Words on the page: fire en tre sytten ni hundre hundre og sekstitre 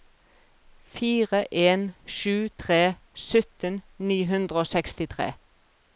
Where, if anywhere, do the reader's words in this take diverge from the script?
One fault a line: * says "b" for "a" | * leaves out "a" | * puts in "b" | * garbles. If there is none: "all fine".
* puts in "sju"
* leaves out "hundre"